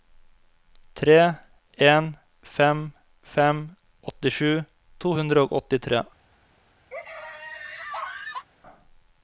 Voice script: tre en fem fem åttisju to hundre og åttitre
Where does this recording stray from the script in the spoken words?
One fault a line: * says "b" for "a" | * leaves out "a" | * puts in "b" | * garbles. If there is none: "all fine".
all fine